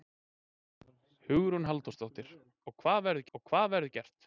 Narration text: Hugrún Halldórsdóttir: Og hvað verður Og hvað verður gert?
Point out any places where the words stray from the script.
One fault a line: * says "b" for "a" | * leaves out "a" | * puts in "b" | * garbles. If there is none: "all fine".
all fine